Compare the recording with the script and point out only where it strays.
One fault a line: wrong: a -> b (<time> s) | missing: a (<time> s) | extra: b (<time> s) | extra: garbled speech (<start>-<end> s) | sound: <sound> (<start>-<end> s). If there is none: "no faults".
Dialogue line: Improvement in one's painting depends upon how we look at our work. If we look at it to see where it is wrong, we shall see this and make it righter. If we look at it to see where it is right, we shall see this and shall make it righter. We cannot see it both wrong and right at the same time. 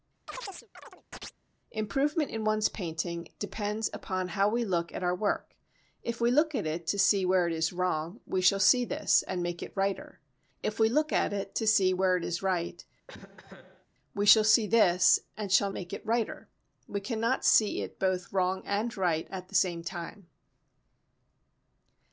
sound: chirp (0.3-1.4 s)
sound: cough (13.1-13.9 s)